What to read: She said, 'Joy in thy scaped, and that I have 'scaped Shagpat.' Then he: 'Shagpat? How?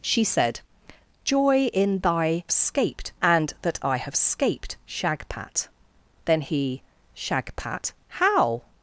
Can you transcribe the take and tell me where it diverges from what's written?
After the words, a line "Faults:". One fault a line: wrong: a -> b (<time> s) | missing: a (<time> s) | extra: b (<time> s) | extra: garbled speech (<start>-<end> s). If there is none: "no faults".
She said, 'Joy in thy scaped, and that I have 'scaped Shagpat.' Then he: 'Shagpat? How?
Faults:
no faults